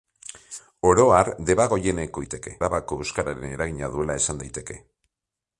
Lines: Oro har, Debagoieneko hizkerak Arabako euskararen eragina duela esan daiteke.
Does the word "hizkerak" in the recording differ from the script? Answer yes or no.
yes